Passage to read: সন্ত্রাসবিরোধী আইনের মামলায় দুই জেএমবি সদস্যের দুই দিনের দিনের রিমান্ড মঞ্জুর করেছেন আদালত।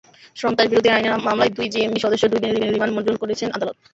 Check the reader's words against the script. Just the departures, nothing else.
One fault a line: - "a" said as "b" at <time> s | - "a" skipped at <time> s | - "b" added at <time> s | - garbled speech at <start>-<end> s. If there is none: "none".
none